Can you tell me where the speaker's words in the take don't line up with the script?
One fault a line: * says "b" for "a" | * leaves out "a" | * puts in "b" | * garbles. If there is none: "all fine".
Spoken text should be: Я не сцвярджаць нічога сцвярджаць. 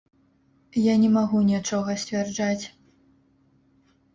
* says "магу" for "сцвярджаць"